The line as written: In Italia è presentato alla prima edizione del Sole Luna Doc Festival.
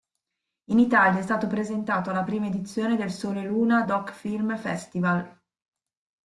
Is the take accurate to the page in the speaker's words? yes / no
no